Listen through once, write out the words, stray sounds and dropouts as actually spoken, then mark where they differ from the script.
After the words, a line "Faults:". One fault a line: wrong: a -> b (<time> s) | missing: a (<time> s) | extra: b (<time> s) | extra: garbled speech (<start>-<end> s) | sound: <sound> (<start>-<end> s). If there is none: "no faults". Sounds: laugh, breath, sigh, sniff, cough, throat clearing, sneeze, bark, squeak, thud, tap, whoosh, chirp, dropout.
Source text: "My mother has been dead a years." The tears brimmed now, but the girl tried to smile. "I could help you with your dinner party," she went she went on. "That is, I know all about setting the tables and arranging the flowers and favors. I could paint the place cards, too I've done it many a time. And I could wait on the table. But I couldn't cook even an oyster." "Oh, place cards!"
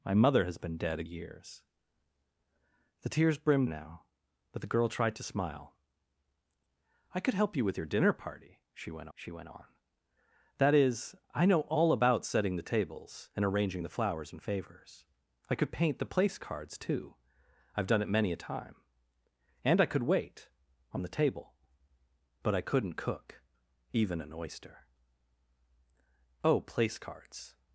"My mother has been dead a years." The tears brimmed now, but the girl tried to smile. "I could help you with your dinner party," she went she went on. "That is, I know all about setting the tables and arranging the flowers and favors. I could paint the place cards, too I've done it many a time. And I could wait on the table. But I couldn't cook even an oyster." "Oh, place cards!"
Faults:
no faults